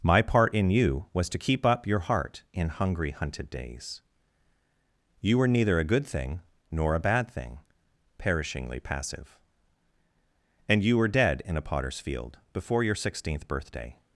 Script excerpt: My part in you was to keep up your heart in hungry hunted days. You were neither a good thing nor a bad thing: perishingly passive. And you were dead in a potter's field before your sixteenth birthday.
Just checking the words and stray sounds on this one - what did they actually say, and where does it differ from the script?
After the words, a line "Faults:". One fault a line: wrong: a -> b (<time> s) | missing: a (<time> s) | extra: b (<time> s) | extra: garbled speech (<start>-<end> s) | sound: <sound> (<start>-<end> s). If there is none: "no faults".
My part in you was to keep up your heart in hungry hunted days. You were neither a good thing nor a bad thing: perishingly passive. And you were dead in a potter's field before your sixteenth birthday.
Faults:
no faults